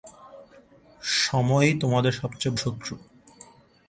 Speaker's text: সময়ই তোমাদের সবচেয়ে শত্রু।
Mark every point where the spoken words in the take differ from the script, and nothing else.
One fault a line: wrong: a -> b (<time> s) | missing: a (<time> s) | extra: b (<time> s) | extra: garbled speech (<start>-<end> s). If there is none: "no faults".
no faults